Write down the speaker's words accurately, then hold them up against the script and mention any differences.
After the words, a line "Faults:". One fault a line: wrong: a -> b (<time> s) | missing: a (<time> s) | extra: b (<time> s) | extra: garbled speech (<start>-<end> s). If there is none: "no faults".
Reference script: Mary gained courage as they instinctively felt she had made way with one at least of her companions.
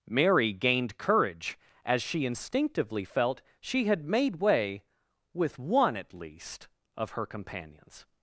Mary gained courage as she instinctively felt she had made way with one at least of her companions.
Faults:
wrong: they -> she (2.0 s)